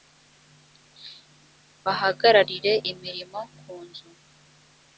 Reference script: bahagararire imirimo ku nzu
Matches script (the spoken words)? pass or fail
pass